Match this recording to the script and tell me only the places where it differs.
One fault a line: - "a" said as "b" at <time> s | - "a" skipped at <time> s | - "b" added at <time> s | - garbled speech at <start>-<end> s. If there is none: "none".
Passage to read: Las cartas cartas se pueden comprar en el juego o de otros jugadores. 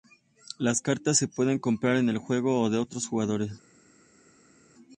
- "cartas" skipped at 1.2 s